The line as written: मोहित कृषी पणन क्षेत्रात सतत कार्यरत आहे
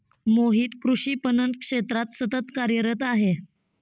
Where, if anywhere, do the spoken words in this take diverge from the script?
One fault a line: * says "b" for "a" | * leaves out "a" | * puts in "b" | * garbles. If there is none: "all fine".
all fine